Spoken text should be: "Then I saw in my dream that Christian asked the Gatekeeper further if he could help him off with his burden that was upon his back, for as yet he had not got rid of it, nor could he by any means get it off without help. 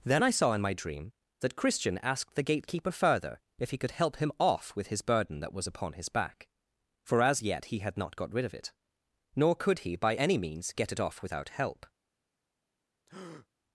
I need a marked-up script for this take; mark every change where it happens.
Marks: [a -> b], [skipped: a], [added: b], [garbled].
"Then I saw in my dream that Christian asked the Gatekeeper further if he could help him off with his burden that was upon his back, for as yet he had not got rid of it, nor could he by any means get it off without help.